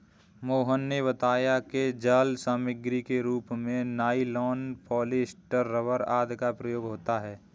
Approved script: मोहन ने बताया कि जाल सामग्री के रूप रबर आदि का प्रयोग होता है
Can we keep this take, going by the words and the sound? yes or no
no